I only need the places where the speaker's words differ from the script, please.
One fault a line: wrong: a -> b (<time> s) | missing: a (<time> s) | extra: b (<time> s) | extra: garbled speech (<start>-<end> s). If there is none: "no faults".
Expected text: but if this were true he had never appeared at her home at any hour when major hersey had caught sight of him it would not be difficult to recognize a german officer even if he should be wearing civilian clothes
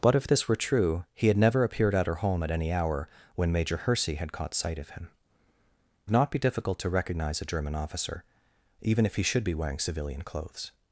missing: it would (5.1 s)